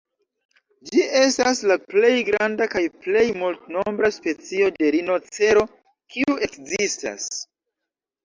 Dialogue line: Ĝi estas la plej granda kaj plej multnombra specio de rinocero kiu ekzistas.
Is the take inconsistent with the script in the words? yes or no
no